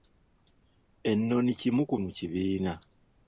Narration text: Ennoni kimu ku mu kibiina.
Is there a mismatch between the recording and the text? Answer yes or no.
no